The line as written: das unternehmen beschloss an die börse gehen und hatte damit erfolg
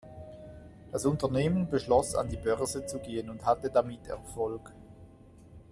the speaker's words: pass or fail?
fail